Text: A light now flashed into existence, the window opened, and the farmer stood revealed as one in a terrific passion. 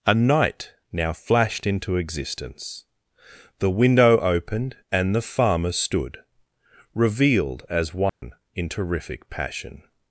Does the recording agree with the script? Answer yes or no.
no